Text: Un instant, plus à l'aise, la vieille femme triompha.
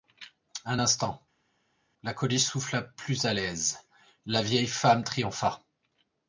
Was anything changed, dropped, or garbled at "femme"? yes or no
no